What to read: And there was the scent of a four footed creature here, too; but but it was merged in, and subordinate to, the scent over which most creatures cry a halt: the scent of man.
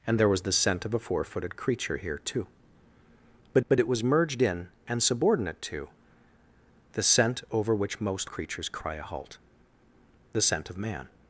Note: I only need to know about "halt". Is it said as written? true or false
true